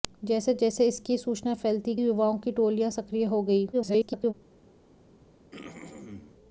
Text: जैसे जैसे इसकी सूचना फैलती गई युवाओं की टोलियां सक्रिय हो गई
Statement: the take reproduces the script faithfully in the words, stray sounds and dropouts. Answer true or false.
false